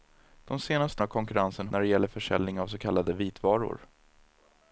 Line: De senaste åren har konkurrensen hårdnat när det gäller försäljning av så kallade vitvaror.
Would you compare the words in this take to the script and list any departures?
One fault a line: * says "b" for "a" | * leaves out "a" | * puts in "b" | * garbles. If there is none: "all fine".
* leaves out "åren"
* leaves out "hårdnat"